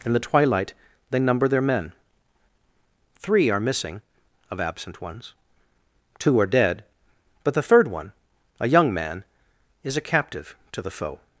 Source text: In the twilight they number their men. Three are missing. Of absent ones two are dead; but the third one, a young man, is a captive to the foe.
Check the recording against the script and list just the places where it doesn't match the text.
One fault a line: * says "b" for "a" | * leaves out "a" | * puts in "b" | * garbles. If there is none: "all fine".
all fine